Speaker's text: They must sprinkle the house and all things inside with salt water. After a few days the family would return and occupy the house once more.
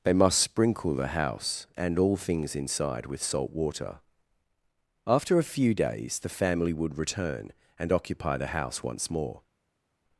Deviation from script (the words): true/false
false